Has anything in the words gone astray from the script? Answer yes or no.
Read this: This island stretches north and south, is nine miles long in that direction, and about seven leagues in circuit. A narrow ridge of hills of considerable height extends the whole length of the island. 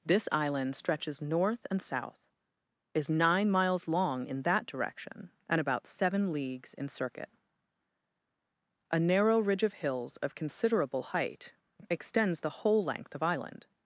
yes